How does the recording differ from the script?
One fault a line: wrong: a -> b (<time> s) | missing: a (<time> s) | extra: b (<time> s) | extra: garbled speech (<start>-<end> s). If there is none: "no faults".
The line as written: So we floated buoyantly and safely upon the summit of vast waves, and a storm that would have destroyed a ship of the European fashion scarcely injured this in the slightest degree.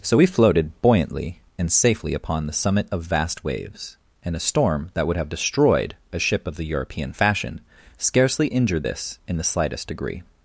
no faults